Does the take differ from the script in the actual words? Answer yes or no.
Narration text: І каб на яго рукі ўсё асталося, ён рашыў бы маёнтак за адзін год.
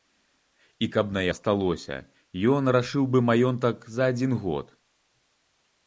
yes